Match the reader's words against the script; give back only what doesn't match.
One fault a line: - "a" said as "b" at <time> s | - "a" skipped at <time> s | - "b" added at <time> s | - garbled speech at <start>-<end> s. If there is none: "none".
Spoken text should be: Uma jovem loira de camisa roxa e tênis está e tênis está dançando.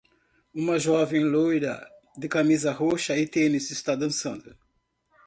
- "e tênis está" skipped at 4.0 s